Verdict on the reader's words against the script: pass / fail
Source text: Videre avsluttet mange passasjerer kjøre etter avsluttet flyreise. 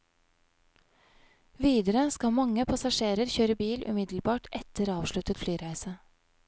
fail